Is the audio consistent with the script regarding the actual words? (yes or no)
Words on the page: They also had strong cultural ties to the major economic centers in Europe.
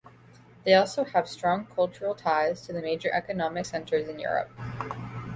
no